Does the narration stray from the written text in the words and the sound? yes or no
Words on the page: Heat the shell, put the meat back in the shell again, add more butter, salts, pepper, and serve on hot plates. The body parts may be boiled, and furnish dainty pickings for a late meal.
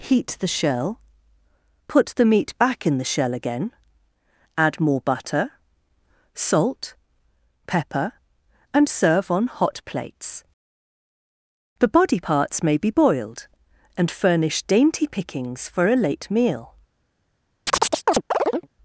yes